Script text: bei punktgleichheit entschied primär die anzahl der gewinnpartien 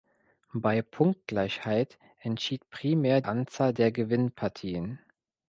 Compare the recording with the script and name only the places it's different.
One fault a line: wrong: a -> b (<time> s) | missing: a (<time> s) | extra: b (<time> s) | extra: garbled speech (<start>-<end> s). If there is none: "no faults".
missing: die (3.2 s)